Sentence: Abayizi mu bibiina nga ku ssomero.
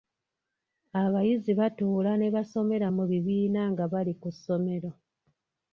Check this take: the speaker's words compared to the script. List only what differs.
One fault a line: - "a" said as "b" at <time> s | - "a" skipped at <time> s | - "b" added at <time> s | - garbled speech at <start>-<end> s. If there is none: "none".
- "batuula ne basomera" added at 1.6 s
- "bali" added at 3.9 s